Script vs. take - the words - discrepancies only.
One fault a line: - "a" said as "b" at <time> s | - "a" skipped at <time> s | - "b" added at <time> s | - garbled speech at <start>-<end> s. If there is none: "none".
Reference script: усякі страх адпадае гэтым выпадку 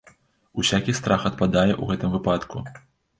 - "ў" added at 1.7 s